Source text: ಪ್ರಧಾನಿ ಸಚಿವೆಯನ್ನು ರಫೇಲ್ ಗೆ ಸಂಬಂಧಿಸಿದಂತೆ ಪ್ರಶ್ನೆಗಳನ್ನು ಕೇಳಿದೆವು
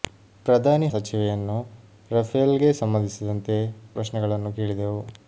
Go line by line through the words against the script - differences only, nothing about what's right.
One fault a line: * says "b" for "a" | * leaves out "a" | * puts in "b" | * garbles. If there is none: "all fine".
all fine